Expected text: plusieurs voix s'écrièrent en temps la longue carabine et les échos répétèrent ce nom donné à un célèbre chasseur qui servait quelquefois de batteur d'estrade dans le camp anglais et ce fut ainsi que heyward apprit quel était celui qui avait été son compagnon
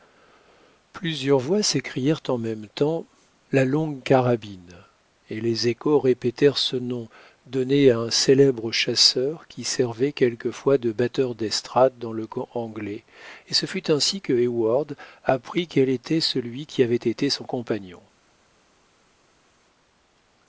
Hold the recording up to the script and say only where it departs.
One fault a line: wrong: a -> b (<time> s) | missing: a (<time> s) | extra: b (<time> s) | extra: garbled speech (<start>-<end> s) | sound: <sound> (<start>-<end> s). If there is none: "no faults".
extra: même (2.4 s)